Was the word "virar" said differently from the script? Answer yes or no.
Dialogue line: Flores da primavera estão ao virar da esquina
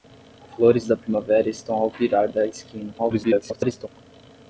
no